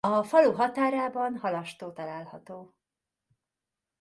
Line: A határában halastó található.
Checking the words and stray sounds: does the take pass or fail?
fail